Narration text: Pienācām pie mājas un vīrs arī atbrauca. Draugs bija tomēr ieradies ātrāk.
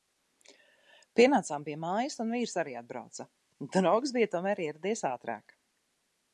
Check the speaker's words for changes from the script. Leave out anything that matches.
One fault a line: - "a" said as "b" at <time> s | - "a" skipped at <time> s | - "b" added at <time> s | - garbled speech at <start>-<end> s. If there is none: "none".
none